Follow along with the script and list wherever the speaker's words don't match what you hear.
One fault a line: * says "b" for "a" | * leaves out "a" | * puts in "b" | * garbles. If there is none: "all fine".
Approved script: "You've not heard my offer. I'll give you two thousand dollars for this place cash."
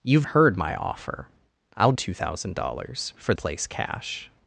* leaves out "not"
* leaves out "give you"
* leaves out "this"